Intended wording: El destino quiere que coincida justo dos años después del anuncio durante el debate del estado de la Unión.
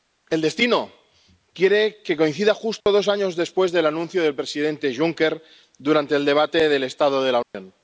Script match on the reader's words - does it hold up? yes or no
no